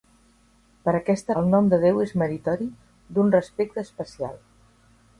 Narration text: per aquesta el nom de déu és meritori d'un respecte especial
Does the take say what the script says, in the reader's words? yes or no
yes